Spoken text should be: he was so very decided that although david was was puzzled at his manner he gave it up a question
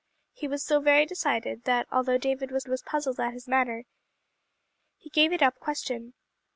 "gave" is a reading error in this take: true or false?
false